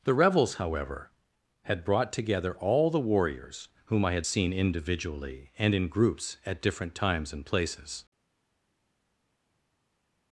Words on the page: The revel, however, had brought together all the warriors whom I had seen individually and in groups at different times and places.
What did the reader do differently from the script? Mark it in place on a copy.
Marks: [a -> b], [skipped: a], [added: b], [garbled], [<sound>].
The [revel, -> revels] however, had brought together all the warriors whom I had seen individually and in groups at different times and places.